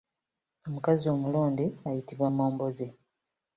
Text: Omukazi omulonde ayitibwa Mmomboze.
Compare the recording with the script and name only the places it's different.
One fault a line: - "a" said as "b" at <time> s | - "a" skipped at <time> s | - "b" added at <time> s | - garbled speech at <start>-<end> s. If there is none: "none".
none